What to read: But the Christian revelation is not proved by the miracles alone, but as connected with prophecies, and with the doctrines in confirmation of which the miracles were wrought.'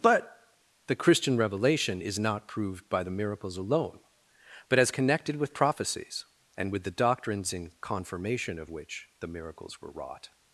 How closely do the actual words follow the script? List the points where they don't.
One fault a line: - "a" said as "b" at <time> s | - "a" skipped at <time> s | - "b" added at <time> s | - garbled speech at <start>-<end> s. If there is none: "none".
none